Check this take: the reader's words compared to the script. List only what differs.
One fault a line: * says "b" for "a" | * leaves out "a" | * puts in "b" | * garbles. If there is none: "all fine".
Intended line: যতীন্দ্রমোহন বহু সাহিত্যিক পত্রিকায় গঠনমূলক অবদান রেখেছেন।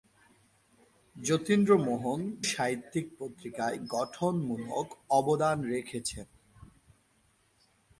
* leaves out "বহু"